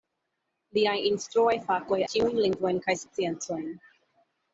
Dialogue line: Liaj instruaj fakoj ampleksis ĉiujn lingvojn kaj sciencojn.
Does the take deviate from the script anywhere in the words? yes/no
yes